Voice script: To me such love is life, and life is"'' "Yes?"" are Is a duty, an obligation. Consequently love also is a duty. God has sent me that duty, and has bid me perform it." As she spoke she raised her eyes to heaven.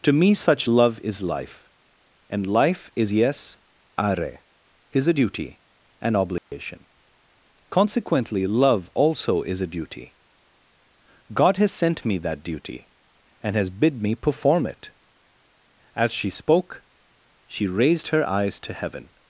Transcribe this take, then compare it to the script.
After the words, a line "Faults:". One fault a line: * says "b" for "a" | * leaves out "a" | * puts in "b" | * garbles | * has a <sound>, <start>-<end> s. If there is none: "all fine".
To me such love is life, and life is"'' "Yes?"" are Is a duty, an obligation. Consequently love also is a duty. God has sent me that duty, and has bid me perform it." As she spoke she raised her eyes to heaven.
Faults:
* has a dropout, 6.4-6.5 s